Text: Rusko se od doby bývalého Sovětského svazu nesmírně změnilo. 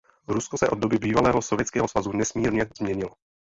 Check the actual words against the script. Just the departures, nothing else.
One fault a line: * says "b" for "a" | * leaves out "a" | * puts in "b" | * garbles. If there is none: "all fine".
all fine